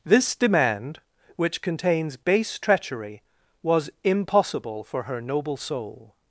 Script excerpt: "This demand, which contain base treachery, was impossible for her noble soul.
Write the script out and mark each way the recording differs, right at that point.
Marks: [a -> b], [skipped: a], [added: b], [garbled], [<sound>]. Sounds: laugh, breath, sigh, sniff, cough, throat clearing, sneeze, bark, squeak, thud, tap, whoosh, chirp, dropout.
"This demand, which [contain -> contains] base treachery, was impossible for her noble soul.